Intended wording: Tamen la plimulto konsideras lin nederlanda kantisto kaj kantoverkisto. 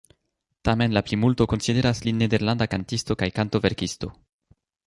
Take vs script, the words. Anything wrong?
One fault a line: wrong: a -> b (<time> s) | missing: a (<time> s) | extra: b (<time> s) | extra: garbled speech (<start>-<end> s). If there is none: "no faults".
no faults